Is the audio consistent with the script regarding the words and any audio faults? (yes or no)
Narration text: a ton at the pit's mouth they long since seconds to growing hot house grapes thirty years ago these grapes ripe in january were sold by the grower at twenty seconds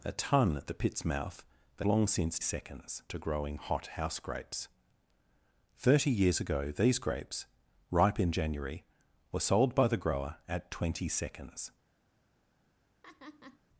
no